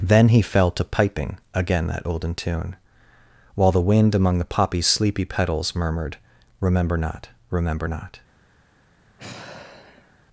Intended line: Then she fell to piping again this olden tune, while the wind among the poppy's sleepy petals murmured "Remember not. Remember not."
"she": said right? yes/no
no